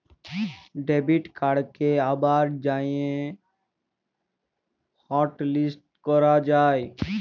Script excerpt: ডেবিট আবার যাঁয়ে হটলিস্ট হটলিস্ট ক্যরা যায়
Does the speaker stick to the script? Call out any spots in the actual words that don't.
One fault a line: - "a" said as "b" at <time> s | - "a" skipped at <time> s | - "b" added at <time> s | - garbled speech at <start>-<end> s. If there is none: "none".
- "কাড়কে" added at 1.4 s
- "হটলিস্ট" skipped at 5.8 s